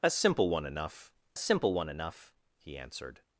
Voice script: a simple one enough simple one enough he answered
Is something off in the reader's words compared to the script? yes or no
no